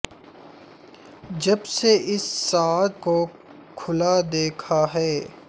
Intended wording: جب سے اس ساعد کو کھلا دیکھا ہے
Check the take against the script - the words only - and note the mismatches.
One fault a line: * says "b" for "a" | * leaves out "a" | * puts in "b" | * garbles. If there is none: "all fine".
all fine